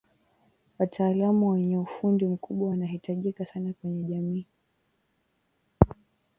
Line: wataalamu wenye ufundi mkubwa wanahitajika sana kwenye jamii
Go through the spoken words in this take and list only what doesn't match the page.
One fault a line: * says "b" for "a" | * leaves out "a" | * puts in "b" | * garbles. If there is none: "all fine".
all fine